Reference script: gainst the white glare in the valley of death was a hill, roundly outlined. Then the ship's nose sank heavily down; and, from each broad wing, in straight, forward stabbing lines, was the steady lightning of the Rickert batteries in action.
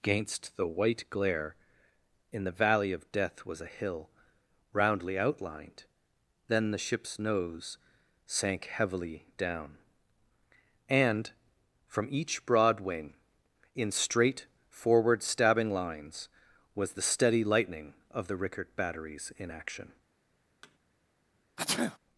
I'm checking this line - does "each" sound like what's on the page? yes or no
yes